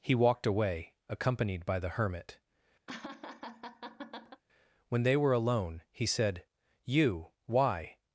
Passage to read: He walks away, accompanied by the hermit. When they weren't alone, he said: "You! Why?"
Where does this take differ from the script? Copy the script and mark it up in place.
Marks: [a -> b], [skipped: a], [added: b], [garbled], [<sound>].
He [walks -> walked] away, accompanied by the hermit. [laugh] When they [weren't -> were] alone, he said: "You! Why?"